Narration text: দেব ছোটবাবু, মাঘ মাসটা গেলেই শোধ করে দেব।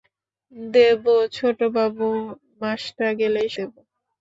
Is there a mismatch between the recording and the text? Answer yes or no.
yes